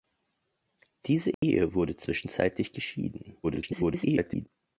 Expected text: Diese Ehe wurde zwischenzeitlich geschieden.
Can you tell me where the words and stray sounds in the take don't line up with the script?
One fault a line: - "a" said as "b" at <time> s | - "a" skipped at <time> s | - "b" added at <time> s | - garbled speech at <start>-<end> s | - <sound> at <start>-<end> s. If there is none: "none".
- dropout at 1.3-1.4 s
- garbled speech at 3.4-4.5 s